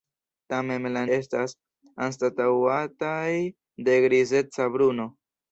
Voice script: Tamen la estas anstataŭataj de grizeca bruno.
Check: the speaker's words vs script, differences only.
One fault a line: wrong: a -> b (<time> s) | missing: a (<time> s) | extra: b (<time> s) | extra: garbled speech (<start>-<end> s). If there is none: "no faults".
no faults